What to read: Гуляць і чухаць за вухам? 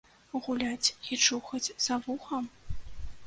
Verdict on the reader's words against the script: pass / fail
pass